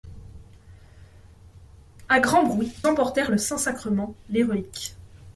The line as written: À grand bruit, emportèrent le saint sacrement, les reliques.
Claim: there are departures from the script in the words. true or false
false